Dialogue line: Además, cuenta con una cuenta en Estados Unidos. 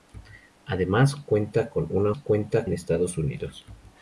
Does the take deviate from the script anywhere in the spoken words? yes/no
no